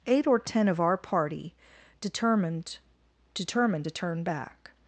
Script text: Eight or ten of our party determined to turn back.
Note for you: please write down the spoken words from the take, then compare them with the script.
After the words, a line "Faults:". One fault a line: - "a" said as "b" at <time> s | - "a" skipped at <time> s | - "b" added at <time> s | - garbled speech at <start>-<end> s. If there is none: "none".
Eight or ten of our party determined determined to turn back.
Faults:
- "determined" added at 3.4 s